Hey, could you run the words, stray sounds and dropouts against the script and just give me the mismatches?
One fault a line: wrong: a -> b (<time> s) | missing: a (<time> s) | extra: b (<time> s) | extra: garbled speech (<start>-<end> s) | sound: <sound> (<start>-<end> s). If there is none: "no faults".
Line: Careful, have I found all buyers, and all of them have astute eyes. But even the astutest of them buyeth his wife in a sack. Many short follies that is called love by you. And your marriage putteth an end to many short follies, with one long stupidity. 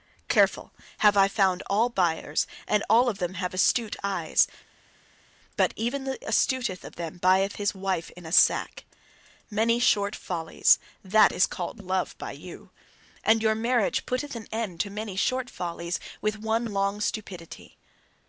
no faults